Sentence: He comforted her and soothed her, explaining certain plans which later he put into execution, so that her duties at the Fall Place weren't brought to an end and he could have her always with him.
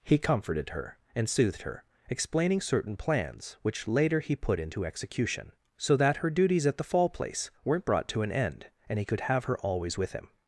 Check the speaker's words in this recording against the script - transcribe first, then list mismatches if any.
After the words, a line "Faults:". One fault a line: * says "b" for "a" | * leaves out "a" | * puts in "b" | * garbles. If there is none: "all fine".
He comforted her and soothed her, explaining certain plans which later he put into execution, so that her duties at the Fall Place weren't brought to an end and he could have her always with him.
Faults:
all fine